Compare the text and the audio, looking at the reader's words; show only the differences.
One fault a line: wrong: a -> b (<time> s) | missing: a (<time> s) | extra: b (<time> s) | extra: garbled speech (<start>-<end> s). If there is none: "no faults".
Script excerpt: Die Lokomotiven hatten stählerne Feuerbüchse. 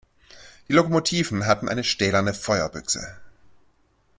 extra: eine (1.6 s)